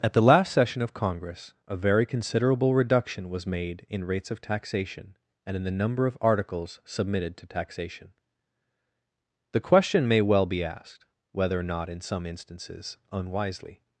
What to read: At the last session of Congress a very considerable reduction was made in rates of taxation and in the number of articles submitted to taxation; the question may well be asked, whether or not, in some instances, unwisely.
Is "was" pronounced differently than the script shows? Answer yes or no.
no